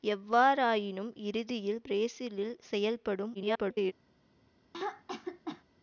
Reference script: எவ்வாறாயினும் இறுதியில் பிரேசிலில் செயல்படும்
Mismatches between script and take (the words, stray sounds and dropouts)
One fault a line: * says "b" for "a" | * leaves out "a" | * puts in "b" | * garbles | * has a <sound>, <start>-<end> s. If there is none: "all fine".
* garbles
* has a throat clearing, 4.7-5.6 s